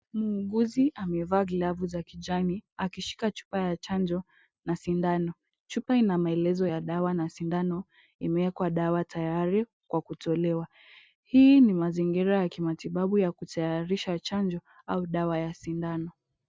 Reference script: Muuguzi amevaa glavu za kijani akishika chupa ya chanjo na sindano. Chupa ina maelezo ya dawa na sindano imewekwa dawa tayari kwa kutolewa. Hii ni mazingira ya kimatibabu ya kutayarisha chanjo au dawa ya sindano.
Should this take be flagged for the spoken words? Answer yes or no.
no